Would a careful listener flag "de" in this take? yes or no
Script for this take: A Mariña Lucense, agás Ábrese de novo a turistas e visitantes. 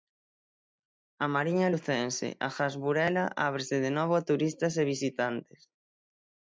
no